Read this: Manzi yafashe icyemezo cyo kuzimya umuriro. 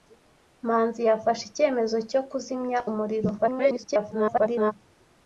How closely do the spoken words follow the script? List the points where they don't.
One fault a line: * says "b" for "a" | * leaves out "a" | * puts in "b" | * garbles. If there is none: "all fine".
* garbles